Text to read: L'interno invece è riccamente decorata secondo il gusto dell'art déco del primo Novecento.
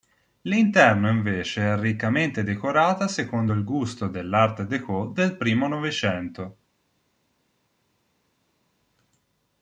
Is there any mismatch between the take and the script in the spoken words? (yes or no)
no